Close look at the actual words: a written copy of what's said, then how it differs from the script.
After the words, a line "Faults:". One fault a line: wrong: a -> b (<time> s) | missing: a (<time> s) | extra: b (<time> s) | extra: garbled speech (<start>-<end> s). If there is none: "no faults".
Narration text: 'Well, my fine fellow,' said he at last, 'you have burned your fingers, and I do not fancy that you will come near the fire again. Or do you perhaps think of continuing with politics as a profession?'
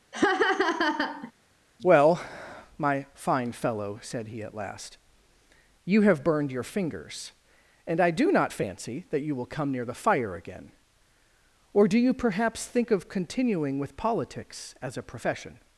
'Well, my fine fellow,' said he at last, 'you have burned your fingers, and I do not fancy that you will come near the fire again. Or do you perhaps think of continuing with politics as a profession?'
Faults:
no faults